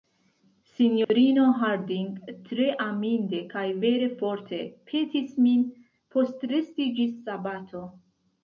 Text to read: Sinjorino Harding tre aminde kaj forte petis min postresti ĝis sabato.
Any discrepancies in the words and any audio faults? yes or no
yes